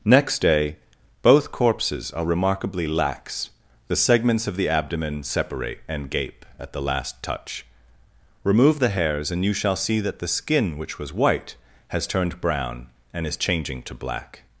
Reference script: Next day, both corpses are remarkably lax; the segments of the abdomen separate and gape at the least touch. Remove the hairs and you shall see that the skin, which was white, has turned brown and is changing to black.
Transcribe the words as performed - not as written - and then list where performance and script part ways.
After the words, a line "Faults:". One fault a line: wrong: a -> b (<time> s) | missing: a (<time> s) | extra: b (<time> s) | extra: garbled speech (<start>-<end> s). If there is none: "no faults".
Next day, both corpses are remarkably lax; the segments of the abdomen separate and gape at the last touch. Remove the hairs and you shall see that the skin, which was white, has turned brown and is changing to black.
Faults:
wrong: least -> last (6.8 s)